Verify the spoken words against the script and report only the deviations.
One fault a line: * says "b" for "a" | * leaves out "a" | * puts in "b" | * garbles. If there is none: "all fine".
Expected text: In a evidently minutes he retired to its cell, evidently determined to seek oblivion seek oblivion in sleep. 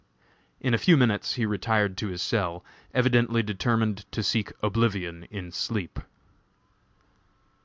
* says "few" for "evidently"
* says "his" for "its"
* leaves out "seek oblivion"